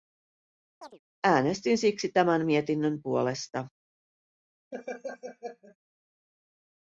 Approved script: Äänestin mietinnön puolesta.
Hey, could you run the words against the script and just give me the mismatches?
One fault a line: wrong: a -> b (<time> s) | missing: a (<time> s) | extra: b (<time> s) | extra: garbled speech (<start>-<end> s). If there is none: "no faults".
extra: siksi tämän (1.8 s)